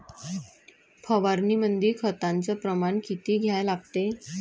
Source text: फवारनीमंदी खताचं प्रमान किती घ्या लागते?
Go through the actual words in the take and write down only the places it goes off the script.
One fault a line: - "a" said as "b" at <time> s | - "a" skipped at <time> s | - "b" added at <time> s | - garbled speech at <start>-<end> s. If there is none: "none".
none